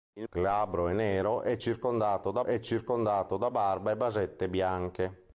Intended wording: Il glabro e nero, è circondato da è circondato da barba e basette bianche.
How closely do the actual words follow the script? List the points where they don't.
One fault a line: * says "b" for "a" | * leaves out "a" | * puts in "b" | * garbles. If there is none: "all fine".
all fine